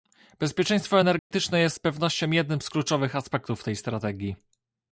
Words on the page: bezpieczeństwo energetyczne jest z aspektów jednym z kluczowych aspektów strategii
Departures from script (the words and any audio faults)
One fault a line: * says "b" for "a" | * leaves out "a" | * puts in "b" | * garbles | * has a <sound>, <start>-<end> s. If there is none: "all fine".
* has a dropout, 1.2-1.3 s
* says "pewnością" for "aspektów"
* puts in "tej"